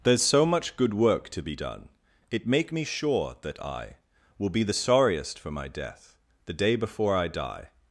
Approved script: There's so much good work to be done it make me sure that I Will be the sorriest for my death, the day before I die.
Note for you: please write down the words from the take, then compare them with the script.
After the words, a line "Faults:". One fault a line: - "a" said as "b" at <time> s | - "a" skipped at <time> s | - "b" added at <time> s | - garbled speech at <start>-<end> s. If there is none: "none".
There's so much good work to be done it make me sure that I Will be the sorriest for my death, the day before I die.
Faults:
none